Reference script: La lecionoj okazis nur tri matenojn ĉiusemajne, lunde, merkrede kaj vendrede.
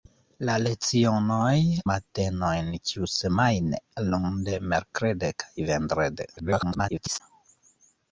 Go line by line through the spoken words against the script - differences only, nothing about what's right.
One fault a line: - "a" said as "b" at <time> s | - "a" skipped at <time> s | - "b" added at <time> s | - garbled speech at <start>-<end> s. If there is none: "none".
- "okazis nur tri" skipped at 1.6 s
- garbled speech at 6.4-7.2 s